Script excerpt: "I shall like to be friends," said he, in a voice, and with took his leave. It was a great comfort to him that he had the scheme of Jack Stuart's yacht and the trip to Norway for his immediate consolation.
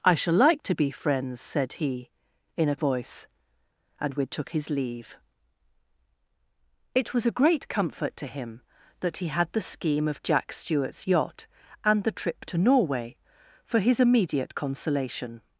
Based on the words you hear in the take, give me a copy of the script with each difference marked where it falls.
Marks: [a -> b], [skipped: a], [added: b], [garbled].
"I shall like to be friends," said he, in a voice, and with took his leave. It was a great comfort to him that he had the scheme of Jack Stuart's yacht and the trip to Norway for his immediate consolation.